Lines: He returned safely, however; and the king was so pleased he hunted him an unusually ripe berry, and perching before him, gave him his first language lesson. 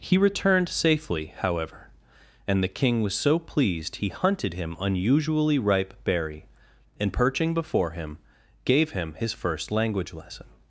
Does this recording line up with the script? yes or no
no